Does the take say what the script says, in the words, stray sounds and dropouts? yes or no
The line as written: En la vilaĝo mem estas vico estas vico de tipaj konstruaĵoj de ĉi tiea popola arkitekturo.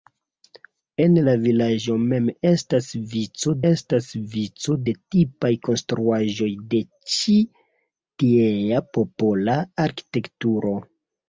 yes